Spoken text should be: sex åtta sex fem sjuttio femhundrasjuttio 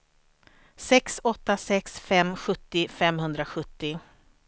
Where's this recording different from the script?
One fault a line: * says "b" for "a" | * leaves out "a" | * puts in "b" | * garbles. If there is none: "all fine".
all fine